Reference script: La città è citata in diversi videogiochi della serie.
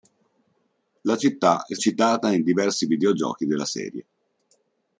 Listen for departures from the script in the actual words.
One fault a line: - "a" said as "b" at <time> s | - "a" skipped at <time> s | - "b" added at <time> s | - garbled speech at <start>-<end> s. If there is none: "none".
none